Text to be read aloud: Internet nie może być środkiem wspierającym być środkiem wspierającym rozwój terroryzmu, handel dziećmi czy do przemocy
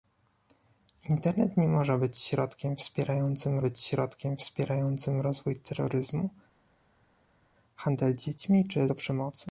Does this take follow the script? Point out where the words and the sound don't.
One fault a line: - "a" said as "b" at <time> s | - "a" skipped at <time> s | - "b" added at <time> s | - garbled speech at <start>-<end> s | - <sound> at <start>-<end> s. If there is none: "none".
none